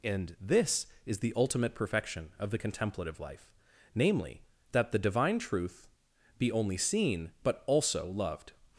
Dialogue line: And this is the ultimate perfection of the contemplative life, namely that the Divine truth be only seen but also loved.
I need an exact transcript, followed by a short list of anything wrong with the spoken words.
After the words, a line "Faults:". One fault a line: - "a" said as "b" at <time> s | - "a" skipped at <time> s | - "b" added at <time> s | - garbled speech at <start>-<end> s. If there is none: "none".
And this is the ultimate perfection of the contemplative life, namely that the Divine truth be only seen but also loved.
Faults:
none